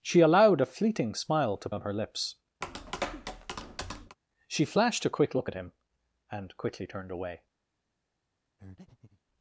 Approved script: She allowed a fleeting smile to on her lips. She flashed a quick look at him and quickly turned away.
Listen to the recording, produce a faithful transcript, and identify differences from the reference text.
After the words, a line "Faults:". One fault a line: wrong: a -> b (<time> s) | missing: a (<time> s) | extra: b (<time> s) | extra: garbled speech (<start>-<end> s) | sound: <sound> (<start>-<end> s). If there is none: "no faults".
She allowed a fleeting smile to on her lips. She flashed a quick look at him and quickly turned away.
Faults:
sound: tap (2.6-4.2 s)
sound: breath (8.6-9.2 s)